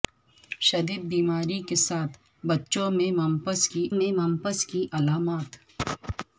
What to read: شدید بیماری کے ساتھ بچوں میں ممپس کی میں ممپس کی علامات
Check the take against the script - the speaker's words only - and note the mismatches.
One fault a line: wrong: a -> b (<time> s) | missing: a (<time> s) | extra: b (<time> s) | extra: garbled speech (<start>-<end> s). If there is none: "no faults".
no faults